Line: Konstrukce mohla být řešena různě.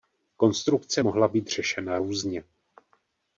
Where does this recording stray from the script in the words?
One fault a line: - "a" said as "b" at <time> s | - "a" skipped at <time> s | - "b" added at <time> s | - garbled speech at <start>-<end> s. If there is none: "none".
none